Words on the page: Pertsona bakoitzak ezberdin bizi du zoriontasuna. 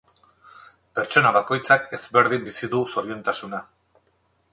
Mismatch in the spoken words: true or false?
false